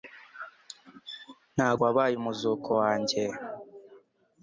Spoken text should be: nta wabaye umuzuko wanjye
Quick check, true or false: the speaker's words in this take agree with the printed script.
true